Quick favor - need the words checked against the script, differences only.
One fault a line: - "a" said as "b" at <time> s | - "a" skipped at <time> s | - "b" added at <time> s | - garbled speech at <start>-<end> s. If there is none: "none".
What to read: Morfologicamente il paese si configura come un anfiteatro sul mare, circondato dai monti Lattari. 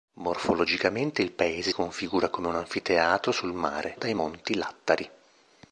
- "si" skipped at 1.7 s
- "circondato" skipped at 3.9 s